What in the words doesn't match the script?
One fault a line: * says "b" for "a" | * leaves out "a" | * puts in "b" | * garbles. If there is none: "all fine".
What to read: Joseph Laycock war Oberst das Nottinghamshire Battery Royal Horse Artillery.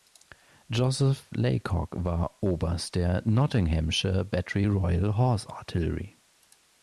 * says "der" for "das"